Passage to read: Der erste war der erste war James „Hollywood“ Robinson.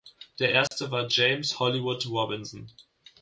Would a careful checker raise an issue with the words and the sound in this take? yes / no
yes